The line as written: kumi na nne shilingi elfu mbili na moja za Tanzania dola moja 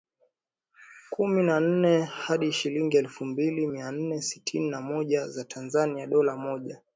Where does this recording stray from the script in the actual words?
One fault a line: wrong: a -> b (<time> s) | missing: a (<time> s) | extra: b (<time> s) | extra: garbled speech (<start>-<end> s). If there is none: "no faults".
extra: hadi (2.0 s)
extra: mia nne sitini (3.6 s)